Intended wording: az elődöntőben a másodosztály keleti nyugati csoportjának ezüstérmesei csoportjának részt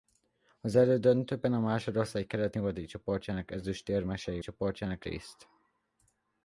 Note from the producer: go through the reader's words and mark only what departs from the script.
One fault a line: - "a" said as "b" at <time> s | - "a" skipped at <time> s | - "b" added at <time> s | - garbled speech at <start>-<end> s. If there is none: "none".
none